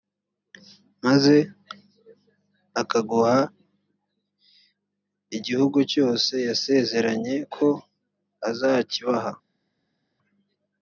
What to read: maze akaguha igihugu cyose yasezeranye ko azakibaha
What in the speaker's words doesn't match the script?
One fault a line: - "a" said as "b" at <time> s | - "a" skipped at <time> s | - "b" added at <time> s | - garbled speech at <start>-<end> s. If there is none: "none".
none